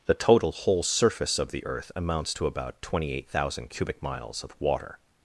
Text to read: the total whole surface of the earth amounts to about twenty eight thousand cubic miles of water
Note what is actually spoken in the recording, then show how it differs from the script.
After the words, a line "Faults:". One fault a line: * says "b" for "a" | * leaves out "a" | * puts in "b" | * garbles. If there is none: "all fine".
the total whole surface of the earth amounts to about twenty eight thousand cubic miles of water
Faults:
all fine